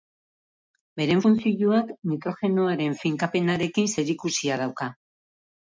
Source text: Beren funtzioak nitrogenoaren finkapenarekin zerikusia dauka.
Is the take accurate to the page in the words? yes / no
yes